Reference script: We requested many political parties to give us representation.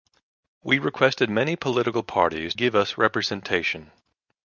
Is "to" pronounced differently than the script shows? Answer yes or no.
yes